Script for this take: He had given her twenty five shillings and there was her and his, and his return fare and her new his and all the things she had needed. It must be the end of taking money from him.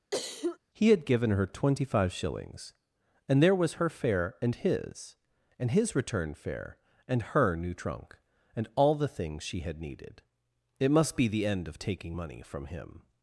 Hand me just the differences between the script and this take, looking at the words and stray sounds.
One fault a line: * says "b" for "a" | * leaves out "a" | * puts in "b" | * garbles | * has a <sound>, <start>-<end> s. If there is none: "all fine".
* has a cough, 0.1-0.6 s
* puts in "fare"
* says "trunk" for "his"